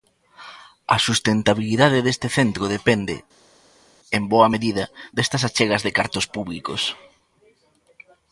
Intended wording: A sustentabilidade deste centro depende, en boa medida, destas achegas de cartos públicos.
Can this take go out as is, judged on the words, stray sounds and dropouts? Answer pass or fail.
pass